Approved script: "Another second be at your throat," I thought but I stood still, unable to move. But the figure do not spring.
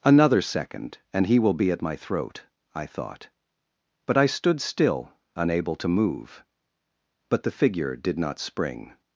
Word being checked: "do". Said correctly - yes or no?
no